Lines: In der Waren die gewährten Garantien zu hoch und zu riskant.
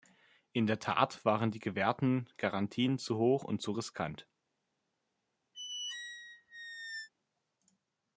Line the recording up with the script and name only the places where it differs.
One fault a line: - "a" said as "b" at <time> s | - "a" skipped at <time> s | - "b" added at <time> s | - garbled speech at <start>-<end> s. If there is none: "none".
- "Tat" added at 0.8 s